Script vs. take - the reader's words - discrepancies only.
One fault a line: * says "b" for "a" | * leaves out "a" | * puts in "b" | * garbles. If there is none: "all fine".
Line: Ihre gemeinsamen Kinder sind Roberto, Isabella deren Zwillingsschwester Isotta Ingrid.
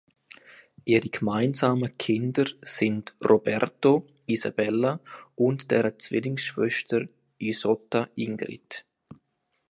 * puts in "und"